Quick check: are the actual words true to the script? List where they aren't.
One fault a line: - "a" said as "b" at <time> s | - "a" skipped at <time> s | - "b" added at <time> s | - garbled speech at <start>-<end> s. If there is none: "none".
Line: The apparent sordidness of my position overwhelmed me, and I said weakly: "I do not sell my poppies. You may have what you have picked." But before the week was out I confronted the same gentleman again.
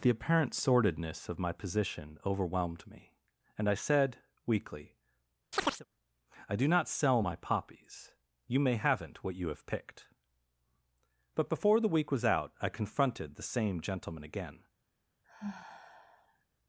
- "have" said as "haven't" at 8.8 s